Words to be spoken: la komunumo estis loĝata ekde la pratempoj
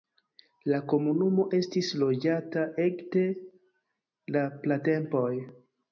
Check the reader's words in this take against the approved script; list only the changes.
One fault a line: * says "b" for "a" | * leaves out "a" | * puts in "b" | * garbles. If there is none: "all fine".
all fine